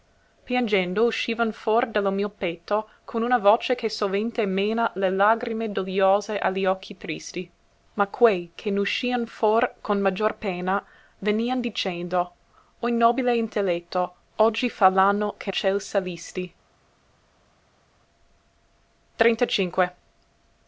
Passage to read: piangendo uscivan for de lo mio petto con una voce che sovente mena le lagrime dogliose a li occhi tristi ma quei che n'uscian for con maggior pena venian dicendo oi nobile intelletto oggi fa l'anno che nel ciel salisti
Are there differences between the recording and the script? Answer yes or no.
yes